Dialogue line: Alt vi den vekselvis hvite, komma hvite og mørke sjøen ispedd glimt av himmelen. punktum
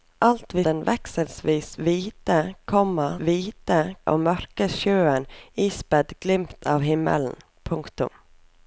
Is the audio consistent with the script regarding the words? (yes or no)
yes